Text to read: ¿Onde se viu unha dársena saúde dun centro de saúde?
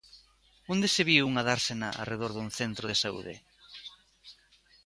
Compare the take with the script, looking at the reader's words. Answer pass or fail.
fail